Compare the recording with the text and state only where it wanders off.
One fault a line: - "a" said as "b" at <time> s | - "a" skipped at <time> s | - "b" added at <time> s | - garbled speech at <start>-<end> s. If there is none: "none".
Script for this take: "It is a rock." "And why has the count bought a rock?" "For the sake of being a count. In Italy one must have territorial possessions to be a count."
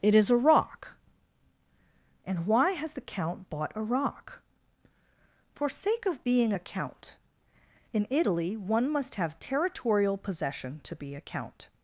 - "the" skipped at 5.7 s
- "possessions" said as "possession" at 10.2 s